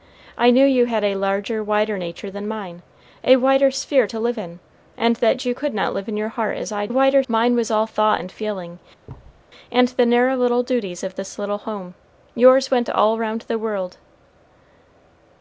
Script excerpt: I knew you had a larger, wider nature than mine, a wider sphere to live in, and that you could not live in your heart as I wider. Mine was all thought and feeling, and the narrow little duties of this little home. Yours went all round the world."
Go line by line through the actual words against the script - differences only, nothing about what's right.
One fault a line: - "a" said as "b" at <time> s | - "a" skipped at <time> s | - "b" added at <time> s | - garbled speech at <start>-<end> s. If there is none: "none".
none